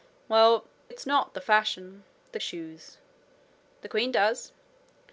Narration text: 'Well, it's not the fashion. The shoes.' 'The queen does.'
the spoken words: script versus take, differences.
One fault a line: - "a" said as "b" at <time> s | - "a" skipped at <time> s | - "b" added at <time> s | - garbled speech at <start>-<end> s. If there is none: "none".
none